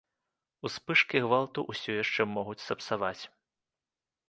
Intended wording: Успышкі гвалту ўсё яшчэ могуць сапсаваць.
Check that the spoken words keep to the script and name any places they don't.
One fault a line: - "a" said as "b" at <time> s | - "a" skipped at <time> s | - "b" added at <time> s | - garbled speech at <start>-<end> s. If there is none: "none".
none